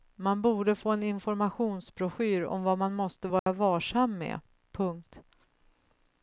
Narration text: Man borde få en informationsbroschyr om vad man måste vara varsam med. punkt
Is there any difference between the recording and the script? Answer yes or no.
no